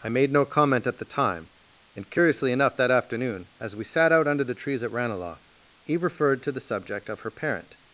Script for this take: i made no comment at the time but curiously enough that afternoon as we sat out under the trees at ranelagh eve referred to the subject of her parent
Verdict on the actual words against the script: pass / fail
fail